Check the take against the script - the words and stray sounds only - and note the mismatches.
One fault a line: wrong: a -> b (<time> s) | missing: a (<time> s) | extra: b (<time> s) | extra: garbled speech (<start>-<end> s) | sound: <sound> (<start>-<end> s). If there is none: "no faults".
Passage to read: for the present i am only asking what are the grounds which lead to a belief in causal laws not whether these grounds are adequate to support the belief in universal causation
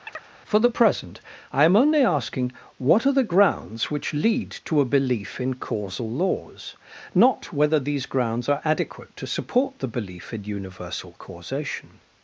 sound: chirp (0.1-0.3 s)